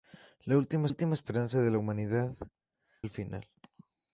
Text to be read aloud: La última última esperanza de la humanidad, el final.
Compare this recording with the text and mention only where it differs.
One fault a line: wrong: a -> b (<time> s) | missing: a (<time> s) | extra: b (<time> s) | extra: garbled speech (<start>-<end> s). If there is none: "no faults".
no faults